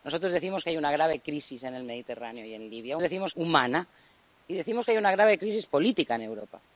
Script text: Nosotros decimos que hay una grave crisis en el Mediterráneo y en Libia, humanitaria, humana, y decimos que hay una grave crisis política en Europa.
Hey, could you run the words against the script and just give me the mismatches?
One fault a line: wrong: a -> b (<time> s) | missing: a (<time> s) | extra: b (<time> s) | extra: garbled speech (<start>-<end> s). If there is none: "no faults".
wrong: humanitaria -> decimos (3.0 s)